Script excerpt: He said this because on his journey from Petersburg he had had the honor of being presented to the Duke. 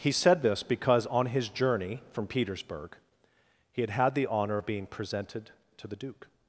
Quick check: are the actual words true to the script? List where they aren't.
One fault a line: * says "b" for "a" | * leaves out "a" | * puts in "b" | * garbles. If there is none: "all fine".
all fine